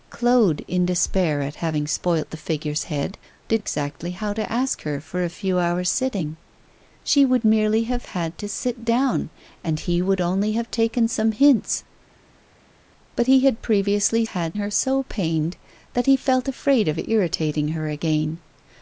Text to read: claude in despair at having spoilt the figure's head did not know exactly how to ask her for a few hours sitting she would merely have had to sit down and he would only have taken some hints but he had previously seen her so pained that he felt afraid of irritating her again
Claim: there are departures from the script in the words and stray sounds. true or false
true